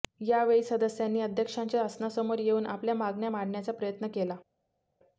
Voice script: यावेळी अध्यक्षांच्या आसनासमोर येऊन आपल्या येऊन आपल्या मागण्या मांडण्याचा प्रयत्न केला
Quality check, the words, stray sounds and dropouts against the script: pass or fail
fail